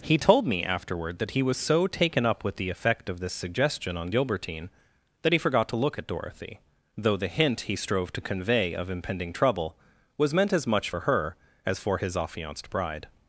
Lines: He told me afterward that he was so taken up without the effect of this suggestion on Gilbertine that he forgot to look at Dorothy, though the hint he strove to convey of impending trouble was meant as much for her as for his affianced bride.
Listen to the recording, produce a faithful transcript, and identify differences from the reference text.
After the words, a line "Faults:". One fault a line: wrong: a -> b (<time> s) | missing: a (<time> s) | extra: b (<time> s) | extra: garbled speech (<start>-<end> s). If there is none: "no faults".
He told me afterward that he was so taken up with the effect of this suggestion on Gilbertine that he forgot to look at Dorothy, though the hint he strove to convey of impending trouble was meant as much for her as for his affianced bride.
Faults:
wrong: without -> with (2.4 s)